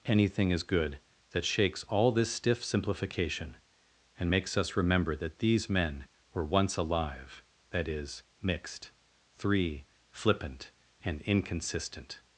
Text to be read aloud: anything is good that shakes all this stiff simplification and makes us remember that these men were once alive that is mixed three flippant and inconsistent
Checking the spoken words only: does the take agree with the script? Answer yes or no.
yes